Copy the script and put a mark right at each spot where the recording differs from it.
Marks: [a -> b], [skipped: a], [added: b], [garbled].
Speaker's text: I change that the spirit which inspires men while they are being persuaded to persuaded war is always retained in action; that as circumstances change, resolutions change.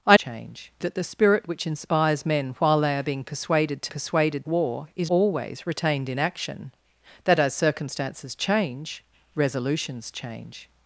I change that the spirit which inspires men while they are being persuaded to persuaded war is always retained in action; that as circumstances change, resolutions change.